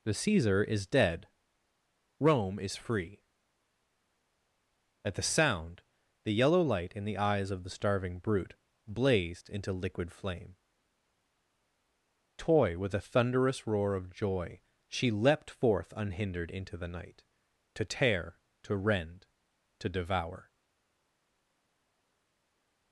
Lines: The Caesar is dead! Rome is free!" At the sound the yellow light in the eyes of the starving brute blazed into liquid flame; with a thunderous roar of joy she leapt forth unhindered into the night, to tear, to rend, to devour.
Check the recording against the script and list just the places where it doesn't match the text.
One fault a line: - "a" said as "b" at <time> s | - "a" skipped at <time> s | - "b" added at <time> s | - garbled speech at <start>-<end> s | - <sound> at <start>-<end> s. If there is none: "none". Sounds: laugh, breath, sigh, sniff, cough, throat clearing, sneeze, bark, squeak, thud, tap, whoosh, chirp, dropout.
- "toy" added at 12.4 s